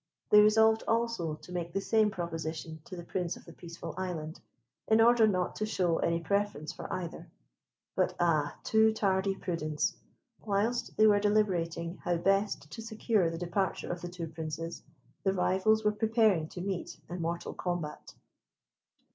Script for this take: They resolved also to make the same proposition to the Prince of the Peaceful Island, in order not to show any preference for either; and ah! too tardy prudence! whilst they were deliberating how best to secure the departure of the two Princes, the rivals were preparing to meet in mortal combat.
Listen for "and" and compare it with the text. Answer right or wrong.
wrong